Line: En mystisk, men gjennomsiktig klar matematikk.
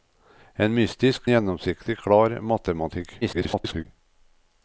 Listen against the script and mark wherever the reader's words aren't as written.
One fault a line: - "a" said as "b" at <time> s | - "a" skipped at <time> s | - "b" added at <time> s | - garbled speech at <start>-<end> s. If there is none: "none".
- "men" skipped at 1.3 s
- garbled speech at 3.2-3.9 s